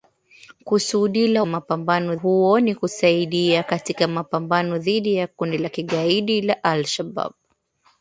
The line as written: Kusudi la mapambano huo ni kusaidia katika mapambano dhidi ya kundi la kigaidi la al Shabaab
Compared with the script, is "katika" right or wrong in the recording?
right